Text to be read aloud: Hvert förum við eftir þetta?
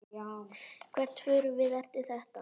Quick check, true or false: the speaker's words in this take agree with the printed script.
true